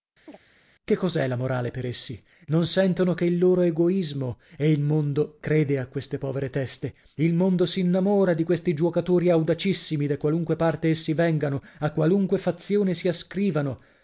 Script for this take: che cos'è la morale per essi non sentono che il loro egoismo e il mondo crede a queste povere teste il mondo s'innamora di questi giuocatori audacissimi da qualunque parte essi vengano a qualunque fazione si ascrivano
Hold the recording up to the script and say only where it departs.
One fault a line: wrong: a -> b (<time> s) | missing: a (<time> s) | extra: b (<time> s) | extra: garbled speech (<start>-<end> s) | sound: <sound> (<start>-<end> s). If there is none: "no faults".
sound: chirp (0.3-0.4 s)